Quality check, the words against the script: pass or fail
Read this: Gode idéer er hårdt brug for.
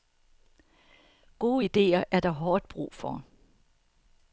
fail